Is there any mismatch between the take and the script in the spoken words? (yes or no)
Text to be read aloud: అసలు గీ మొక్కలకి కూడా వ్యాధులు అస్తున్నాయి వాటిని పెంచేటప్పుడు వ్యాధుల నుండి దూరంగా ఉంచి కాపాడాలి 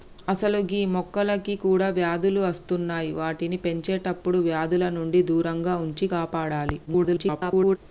yes